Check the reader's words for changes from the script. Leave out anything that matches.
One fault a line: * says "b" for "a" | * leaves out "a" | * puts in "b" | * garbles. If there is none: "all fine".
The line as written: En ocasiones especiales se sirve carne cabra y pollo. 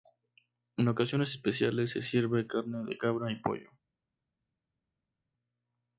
* puts in "de"